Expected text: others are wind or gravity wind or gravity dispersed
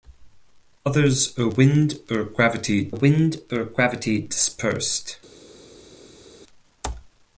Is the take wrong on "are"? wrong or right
right